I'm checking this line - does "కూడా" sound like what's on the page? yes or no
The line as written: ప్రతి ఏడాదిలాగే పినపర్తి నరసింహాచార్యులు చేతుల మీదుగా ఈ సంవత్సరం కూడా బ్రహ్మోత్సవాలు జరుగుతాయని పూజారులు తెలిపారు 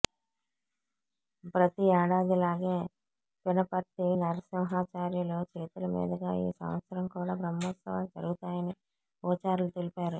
yes